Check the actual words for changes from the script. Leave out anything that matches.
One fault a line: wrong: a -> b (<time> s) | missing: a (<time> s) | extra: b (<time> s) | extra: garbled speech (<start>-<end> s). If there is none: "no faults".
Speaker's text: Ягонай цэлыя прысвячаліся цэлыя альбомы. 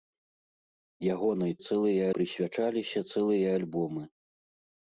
no faults